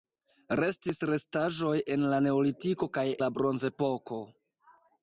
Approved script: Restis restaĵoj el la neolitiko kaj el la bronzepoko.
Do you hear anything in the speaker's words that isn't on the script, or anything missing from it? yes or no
yes